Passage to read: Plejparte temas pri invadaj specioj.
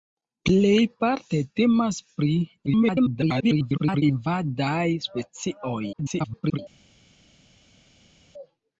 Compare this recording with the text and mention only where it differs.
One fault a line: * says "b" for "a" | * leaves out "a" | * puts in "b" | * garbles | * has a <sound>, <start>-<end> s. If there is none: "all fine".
* garbles
* garbles